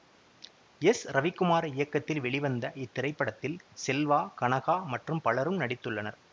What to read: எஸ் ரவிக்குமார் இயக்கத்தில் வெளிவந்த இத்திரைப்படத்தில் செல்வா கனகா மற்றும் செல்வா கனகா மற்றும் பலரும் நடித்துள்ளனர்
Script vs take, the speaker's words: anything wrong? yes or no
yes